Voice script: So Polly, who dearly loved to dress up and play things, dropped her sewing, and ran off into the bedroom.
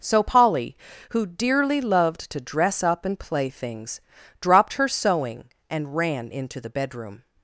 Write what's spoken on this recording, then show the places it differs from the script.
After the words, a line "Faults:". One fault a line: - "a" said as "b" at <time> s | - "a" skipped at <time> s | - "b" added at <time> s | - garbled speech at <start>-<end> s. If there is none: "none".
So Polly, who dearly loved to dress up and play things, dropped her sewing, and ran into the bedroom.
Faults:
- "off" skipped at 6.3 s